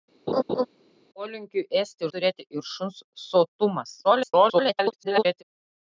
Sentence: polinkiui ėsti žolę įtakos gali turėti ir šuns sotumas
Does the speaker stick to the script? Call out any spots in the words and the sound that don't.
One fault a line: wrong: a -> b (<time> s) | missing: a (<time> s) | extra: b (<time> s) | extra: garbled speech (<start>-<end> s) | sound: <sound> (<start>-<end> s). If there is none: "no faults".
sound: laugh (0.3-0.7 s)
missing: žolę įtakos gali (2.1 s)
extra: garbled speech (4.0-5.4 s)